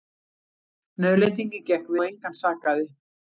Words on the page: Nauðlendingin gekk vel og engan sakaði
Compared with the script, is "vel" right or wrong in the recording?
wrong